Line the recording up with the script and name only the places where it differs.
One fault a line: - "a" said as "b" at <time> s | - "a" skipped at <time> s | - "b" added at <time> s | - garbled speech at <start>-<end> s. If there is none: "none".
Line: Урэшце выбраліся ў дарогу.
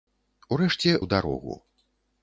- "выбраліся" skipped at 0.9 s